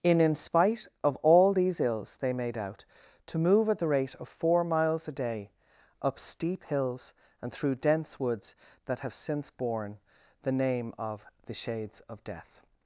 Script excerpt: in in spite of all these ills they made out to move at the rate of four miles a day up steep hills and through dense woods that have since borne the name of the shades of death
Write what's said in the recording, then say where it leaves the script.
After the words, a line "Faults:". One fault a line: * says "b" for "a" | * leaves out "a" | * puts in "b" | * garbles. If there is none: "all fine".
in in spite of all these ills they made out to move at the rate of four miles a day up steep hills and through dense woods that have since borne the name of the shades of death
Faults:
all fine